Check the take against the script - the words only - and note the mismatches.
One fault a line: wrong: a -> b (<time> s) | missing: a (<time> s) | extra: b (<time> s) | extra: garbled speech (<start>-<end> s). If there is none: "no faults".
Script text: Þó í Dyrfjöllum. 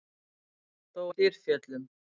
no faults